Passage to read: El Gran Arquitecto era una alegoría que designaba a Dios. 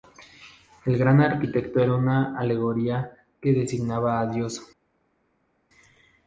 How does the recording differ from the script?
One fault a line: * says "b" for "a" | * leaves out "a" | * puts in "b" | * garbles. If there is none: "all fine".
all fine